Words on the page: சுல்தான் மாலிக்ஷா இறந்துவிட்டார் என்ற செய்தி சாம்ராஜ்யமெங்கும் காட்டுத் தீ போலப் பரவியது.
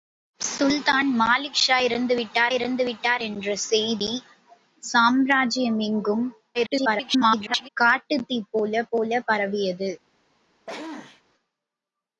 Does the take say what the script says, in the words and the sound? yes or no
no